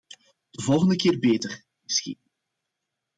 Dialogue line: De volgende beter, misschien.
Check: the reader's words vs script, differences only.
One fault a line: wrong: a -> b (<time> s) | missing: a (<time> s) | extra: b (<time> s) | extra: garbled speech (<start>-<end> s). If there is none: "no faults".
extra: keer (1.0 s)